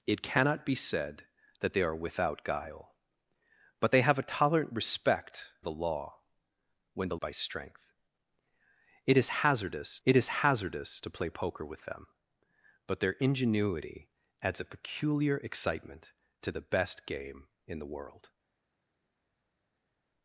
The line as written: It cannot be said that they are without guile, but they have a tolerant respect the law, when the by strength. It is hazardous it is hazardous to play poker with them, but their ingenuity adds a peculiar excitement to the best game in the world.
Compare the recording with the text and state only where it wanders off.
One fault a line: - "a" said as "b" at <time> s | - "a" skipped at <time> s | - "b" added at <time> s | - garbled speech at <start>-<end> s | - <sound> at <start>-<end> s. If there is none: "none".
none